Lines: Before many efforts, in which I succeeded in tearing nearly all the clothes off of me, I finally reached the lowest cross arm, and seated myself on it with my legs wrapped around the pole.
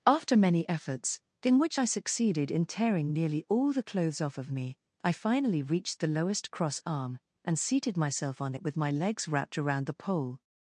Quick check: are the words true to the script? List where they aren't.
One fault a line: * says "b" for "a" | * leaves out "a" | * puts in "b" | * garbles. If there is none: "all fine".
* says "After" for "Before"